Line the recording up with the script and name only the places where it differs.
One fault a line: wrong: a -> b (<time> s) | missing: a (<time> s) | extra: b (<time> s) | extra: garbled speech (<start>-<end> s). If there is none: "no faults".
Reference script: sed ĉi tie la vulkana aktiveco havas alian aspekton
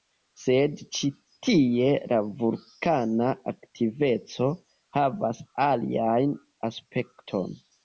no faults